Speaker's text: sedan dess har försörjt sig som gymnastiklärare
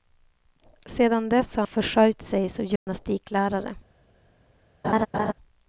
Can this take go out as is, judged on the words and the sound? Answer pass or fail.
fail